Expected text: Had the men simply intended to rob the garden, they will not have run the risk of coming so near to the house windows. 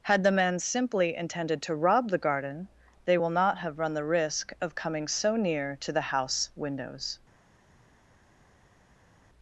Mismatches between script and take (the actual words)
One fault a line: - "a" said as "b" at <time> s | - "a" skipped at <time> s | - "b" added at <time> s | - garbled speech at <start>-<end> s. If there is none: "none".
none